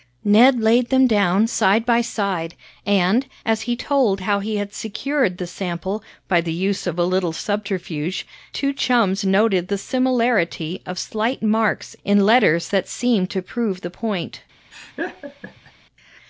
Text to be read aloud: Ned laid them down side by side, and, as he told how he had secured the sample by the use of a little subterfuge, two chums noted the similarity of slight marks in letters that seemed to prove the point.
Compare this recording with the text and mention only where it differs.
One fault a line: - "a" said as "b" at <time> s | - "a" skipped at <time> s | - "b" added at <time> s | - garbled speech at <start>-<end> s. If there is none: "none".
none